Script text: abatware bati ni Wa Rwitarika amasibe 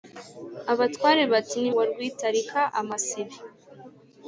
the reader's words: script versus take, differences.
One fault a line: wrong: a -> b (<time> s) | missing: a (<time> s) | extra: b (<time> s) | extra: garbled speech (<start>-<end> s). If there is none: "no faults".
no faults